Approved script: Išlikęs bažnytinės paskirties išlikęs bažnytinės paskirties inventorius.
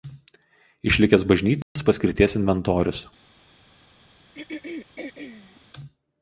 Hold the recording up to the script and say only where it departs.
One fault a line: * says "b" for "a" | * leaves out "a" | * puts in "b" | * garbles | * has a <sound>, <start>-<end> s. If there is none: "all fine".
* has a dropout, 1.6-1.8 s
* leaves out "išlikęs bažnytinės paskirties"
* has a throat clearing, 4.3-5.6 s